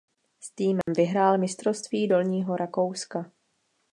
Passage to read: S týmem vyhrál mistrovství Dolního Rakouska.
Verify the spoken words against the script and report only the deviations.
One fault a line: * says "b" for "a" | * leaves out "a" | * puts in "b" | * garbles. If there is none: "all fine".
all fine